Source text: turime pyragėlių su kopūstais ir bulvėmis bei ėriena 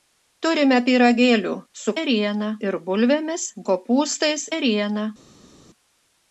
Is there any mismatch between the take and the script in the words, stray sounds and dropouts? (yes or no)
yes